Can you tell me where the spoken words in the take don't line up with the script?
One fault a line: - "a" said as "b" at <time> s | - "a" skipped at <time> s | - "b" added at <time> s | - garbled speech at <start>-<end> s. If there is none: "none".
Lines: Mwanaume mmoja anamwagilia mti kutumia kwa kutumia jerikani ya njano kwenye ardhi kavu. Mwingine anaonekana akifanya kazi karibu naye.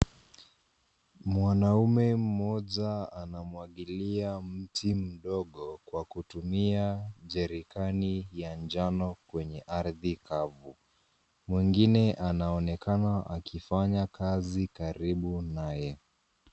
- "kutumia" said as "mdogo" at 4.9 s